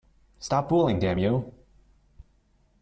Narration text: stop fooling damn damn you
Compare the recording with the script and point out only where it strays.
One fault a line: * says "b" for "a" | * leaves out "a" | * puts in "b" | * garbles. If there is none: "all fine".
* leaves out "damn"